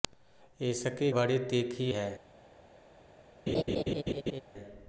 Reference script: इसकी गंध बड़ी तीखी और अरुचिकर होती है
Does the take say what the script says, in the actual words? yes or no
no